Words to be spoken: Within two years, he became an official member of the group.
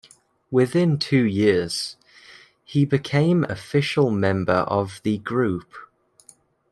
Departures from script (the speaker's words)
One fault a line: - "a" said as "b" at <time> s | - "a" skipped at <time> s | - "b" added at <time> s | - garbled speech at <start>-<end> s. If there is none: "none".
- "an" skipped at 3.5 s